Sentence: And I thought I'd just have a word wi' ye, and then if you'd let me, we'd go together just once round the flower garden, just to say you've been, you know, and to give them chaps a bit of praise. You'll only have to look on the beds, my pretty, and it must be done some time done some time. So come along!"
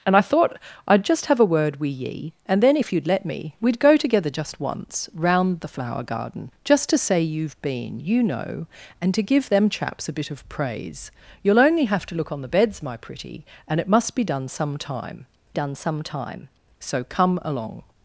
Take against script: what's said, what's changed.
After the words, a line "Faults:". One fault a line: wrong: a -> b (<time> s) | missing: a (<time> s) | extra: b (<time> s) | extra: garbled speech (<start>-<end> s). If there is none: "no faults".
And I thought I'd just have a word wi' ye, and then if you'd let me, we'd go together just once round the flower garden, just to say you've been, you know, and to give them chaps a bit of praise. You'll only have to look on the beds, my pretty, and it must be done some time done some time. So come along!"
Faults:
no faults